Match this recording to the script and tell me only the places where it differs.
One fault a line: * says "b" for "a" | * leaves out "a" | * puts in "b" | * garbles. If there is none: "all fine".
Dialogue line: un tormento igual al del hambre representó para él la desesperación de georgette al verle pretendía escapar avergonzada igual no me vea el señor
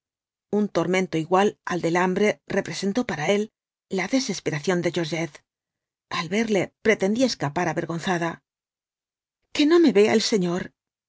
* says "que" for "igual"